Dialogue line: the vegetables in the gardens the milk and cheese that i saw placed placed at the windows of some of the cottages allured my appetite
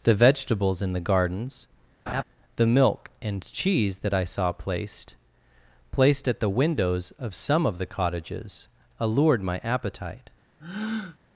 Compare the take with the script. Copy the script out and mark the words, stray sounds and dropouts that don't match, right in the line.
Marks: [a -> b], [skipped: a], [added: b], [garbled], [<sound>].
the vegetables in the gardens [laugh] the milk and cheese that i saw placed placed at the windows of some of the cottages allured my appetite [breath]